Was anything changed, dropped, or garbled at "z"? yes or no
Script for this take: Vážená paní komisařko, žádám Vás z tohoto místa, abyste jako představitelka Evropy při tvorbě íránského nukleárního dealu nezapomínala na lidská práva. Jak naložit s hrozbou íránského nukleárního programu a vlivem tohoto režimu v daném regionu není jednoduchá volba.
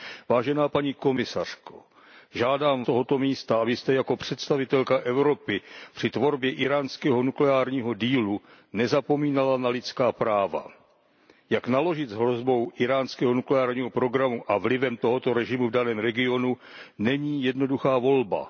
yes